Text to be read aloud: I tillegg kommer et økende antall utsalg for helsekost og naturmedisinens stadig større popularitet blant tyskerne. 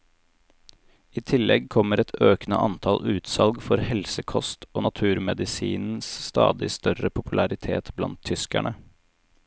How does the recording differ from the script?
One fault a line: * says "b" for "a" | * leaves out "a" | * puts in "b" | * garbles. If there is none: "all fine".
all fine